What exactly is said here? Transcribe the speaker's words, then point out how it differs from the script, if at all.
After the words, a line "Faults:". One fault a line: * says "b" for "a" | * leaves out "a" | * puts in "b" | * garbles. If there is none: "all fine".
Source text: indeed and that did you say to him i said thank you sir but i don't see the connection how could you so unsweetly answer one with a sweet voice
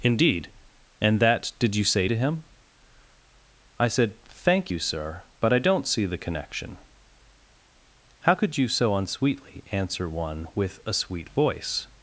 indeed and that did you say to him i said thank you sir but i don't see the connection how could you so unsweetly answer one with a sweet voice
Faults:
all fine